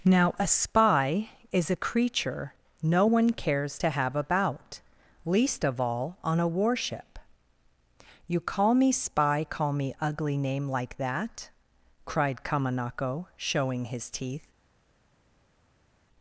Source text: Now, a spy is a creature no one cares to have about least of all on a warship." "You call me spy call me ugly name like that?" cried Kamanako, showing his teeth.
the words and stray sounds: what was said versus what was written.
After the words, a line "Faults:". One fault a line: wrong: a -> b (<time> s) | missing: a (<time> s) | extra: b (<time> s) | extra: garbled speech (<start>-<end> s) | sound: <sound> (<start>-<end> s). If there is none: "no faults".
Now, a spy is a creature no one cares to have about least of all on a warship." "You call me spy call me ugly name like that?" cried Kamanako, showing his teeth.
Faults:
no faults